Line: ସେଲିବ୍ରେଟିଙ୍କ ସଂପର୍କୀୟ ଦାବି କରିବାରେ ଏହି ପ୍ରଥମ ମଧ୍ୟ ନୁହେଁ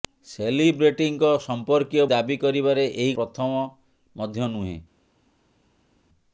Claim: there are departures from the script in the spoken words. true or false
false